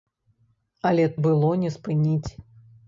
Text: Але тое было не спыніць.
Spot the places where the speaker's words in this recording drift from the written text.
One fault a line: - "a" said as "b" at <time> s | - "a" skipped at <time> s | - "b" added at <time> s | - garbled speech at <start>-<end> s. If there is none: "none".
- "тое" skipped at 1.0 s